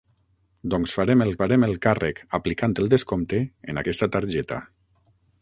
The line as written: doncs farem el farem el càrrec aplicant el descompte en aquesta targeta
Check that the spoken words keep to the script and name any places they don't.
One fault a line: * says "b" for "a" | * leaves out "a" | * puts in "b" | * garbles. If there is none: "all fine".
all fine